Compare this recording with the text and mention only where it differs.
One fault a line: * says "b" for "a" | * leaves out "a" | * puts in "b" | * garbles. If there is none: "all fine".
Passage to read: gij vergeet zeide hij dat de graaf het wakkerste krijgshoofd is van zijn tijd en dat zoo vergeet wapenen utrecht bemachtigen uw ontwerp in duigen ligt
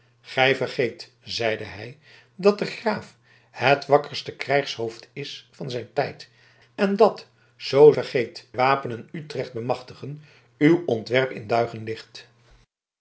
all fine